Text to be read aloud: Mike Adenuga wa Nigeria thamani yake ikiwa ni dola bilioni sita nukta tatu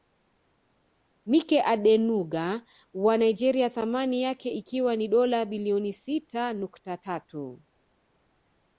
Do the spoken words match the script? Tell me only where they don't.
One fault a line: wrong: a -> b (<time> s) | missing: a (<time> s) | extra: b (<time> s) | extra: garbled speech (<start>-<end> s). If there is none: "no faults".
no faults